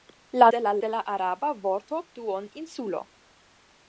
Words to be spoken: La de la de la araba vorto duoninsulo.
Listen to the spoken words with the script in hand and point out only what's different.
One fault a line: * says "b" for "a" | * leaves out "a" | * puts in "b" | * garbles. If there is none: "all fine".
all fine